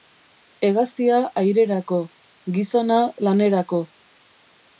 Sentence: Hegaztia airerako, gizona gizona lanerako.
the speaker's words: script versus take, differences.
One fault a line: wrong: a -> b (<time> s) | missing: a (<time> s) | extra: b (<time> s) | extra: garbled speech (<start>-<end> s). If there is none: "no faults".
missing: gizona (3.0 s)